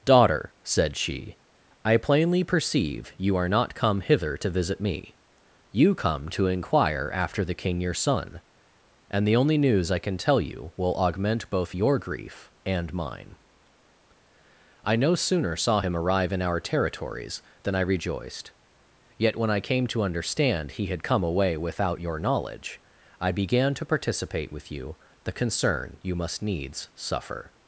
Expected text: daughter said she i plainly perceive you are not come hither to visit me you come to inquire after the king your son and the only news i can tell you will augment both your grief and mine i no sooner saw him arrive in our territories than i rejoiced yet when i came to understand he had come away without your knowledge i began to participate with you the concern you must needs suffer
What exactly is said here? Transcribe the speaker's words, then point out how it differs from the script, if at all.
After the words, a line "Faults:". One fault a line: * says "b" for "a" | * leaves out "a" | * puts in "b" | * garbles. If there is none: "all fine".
daughter said she i plainly perceive you are not come hither to visit me you come to inquire after the king your son and the only news i can tell you will augment both your grief and mine i no sooner saw him arrive in our territories than i rejoiced yet when i came to understand he had come away without your knowledge i began to participate with you the concern you must needs suffer
Faults:
all fine